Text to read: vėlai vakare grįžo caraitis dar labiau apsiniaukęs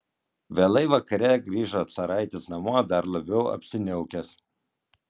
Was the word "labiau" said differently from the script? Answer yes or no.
no